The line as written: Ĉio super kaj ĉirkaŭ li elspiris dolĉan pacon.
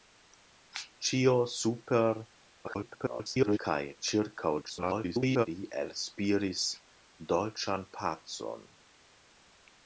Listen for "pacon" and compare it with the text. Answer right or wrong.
right